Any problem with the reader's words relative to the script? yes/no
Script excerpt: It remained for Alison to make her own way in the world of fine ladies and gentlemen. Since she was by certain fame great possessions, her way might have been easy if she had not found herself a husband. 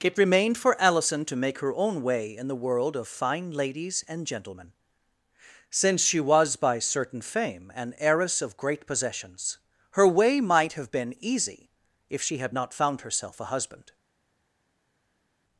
yes